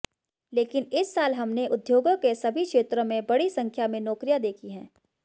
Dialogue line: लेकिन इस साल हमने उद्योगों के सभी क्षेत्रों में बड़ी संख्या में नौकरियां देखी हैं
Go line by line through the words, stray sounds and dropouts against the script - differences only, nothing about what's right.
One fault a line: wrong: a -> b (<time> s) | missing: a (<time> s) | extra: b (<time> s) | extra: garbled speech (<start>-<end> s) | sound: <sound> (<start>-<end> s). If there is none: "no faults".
no faults